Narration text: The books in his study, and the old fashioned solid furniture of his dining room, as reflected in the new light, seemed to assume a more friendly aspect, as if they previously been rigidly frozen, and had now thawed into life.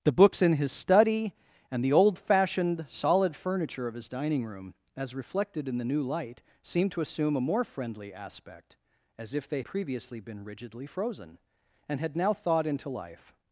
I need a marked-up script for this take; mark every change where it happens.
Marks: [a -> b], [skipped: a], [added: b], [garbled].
The books in his study, and the old fashioned solid furniture of his dining room, as reflected in the new light, seemed to assume a more friendly aspect, as if they previously been rigidly frozen, and had now thawed into life.